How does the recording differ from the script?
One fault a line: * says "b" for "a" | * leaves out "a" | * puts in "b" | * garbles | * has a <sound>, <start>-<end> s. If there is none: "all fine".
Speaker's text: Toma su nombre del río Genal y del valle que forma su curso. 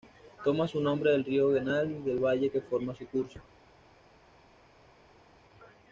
all fine